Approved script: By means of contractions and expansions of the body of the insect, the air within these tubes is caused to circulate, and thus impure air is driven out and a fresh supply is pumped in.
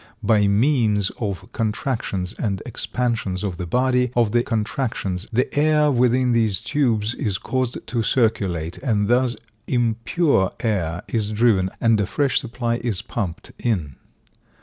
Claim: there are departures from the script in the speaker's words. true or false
true